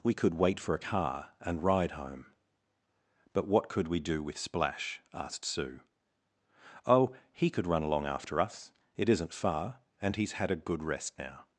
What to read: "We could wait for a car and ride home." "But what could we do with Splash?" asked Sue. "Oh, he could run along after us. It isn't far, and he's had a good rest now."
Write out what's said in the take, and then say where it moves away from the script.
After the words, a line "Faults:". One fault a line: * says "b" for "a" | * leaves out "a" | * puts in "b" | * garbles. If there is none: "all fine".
"We could wait for a car and ride home." "But what could we do with Splash?" asked Sue. "Oh, he could run along after us. It isn't far, and he's had a good rest now."
Faults:
all fine